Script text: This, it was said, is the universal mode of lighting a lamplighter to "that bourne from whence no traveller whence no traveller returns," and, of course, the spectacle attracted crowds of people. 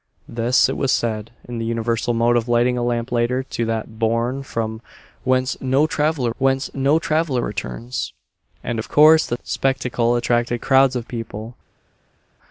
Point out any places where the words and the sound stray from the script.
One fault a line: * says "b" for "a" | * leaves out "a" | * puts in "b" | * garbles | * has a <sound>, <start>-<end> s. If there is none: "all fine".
all fine